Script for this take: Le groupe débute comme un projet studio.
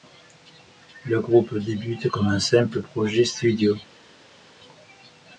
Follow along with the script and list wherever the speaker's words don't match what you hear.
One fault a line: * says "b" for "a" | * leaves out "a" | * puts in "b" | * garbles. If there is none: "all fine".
* puts in "simple"